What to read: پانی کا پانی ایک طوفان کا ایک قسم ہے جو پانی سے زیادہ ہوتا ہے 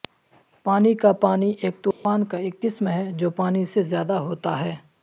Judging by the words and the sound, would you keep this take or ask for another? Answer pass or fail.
fail